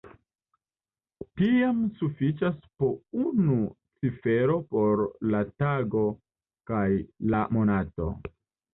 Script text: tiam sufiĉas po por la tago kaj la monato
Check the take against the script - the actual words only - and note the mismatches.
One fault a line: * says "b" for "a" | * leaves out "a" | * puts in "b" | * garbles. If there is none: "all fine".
* puts in "unu cifero"